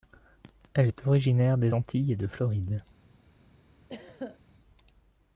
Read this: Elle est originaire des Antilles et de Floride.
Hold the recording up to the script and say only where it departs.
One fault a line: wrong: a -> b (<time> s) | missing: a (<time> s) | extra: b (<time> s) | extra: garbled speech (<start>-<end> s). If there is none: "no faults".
no faults